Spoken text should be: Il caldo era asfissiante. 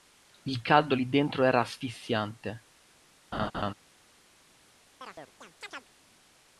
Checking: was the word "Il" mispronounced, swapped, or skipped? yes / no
no